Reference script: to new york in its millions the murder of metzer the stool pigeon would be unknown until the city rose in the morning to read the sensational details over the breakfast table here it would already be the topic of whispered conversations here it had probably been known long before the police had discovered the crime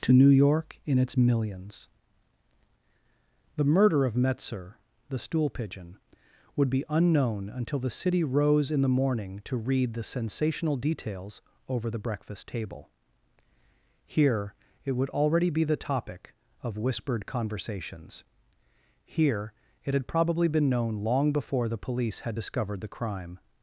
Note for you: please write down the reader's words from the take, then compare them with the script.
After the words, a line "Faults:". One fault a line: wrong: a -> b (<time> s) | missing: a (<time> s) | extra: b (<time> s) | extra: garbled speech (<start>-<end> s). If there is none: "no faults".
to new york in its millions the murder of metzer the stool pigeon would be unknown until the city rose in the morning to read the sensational details over the breakfast table here it would already be the topic of whispered conversations here it had probably been known long before the police had discovered the crime
Faults:
no faults